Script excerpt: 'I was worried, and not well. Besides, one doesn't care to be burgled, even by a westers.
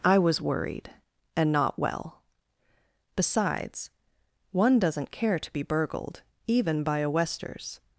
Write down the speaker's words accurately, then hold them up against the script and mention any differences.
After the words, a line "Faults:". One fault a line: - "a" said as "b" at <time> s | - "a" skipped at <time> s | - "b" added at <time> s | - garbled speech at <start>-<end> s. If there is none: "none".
'I was worried, and not well. Besides, one doesn't care to be burgled, even by a westers.
Faults:
none